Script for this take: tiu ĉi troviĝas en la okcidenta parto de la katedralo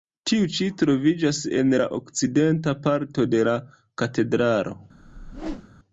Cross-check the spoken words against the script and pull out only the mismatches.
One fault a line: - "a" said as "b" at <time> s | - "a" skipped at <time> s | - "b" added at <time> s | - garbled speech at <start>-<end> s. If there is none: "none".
none